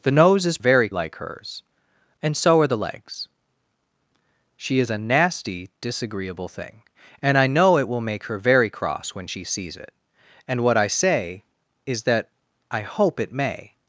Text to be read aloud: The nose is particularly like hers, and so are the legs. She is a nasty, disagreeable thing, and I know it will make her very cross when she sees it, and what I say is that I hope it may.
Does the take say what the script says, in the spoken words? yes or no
no